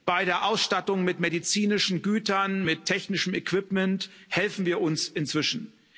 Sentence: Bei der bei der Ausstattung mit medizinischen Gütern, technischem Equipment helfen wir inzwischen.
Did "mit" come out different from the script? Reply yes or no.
no